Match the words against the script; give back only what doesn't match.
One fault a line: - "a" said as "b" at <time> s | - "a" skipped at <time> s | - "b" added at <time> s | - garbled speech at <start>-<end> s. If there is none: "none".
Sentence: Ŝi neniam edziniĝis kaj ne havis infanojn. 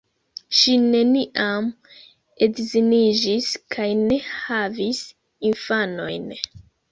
none